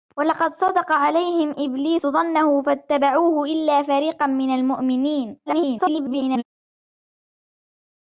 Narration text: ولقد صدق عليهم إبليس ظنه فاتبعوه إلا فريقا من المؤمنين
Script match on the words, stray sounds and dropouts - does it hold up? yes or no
no